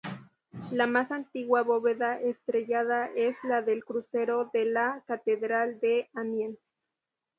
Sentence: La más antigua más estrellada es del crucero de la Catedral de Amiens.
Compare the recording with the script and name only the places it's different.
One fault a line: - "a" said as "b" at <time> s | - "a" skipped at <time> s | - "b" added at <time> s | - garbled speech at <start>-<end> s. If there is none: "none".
- "más" said as "bóveda" at 1.6 s
- "la" added at 3.4 s